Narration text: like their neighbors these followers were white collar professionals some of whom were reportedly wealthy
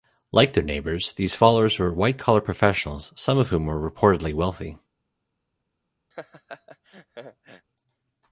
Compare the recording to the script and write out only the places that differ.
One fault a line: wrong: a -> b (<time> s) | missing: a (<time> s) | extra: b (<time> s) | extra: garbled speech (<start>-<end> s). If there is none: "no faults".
no faults